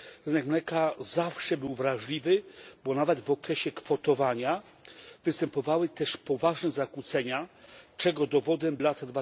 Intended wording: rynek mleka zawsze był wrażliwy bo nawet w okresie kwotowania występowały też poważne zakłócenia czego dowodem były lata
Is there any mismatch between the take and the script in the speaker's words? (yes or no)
yes